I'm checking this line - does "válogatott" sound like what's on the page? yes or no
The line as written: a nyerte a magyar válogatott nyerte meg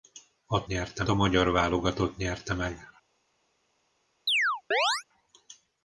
yes